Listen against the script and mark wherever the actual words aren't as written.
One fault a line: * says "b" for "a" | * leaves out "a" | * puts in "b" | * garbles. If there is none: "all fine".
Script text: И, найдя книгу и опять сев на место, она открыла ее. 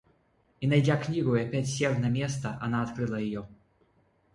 all fine